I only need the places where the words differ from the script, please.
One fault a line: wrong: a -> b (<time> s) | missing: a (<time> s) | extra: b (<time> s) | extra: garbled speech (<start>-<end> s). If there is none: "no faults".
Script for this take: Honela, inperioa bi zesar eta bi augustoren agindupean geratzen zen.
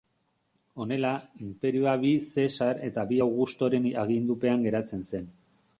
no faults